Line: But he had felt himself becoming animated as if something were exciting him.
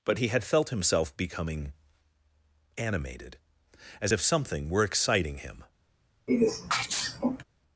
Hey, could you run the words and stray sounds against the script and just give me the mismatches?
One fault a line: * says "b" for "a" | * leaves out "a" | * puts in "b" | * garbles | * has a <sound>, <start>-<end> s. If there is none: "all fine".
* has a sneeze, 6.3-7.4 s